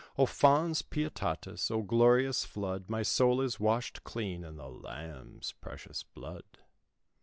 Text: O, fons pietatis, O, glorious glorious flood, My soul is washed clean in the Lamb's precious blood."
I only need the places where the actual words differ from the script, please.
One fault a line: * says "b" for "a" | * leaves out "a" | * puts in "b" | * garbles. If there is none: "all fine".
* leaves out "glorious"